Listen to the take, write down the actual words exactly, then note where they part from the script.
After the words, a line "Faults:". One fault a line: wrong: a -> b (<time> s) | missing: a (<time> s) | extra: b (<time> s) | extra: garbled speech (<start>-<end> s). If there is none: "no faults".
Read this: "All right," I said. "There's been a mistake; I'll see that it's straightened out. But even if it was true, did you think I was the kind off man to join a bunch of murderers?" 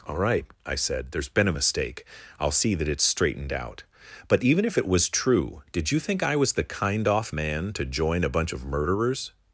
"All right," I said. "There's been a mistake; I'll see that it's straightened out. But even if it was true, did you think I was the kind off man to join a bunch of murderers?"
Faults:
no faults